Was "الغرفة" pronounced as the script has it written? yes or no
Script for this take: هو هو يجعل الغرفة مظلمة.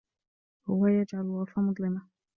yes